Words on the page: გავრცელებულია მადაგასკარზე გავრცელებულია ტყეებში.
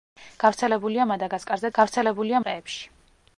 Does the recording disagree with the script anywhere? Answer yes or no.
no